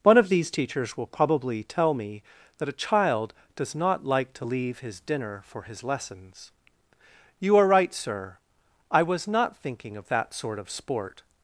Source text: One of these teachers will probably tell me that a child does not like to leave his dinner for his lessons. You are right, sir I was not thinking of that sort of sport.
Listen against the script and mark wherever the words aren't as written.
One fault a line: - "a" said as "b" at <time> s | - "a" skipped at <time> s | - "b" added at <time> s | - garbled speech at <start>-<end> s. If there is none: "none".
none